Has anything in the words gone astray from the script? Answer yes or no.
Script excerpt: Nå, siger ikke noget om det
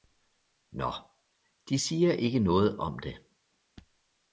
yes